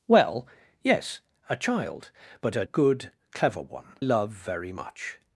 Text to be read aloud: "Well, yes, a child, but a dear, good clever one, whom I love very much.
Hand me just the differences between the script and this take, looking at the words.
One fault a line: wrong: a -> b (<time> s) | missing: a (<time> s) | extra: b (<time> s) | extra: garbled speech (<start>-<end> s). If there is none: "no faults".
missing: dear (2.6 s)
missing: whom I (4.0 s)